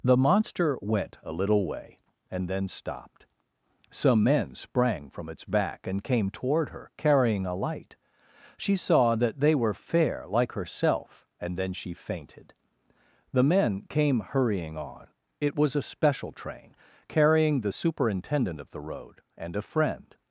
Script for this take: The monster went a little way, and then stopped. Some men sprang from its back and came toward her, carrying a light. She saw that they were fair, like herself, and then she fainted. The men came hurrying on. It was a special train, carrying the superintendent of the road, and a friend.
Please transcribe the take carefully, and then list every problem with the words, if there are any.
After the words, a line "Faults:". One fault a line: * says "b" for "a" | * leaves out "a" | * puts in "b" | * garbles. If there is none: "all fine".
The monster went a little way, and then stopped. Some men sprang from its back and came toward her, carrying a light. She saw that they were fair, like herself, and then she fainted. The men came hurrying on. It was a special train, carrying the superintendent of the road, and a friend.
Faults:
all fine